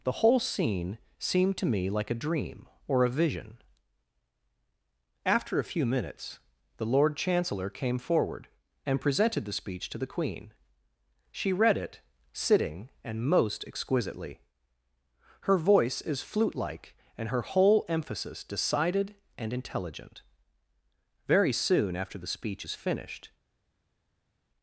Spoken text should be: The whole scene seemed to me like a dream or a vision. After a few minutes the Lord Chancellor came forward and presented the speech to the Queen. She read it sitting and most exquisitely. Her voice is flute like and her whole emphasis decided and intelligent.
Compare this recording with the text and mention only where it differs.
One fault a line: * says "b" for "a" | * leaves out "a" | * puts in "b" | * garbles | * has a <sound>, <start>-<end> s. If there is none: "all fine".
* puts in "Very soon after the speech is finished"